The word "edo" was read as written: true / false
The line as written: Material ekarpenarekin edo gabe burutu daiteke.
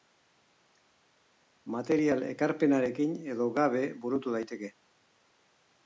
true